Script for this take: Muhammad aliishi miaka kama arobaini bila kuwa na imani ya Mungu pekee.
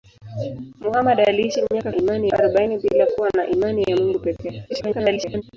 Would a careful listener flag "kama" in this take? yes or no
yes